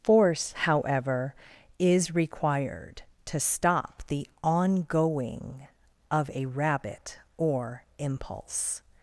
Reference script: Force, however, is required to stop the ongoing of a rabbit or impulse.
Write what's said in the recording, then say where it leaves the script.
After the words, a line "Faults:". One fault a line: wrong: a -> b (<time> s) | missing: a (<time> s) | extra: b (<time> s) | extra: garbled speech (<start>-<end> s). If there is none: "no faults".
Force, however, is required to stop the ongoing of a rabbit or impulse.
Faults:
no faults